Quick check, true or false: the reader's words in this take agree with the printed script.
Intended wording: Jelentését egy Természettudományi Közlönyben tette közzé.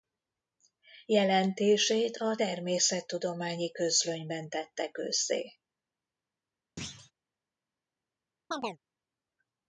false